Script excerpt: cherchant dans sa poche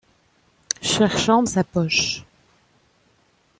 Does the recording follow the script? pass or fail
fail